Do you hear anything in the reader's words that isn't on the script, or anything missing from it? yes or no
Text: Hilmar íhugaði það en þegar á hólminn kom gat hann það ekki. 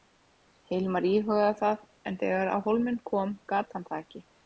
no